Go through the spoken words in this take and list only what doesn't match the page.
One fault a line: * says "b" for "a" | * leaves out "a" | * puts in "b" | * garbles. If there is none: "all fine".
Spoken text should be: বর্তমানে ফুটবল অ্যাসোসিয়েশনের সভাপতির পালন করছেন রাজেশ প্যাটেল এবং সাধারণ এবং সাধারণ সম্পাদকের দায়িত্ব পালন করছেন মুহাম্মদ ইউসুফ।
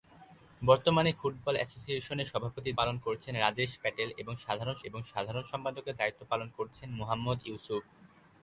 all fine